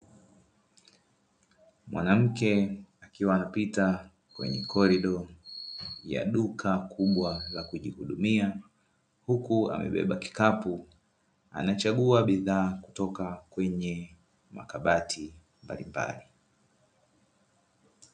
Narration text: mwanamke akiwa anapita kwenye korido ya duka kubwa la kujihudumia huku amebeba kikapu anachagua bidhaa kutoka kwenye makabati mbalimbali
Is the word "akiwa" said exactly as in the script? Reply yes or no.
yes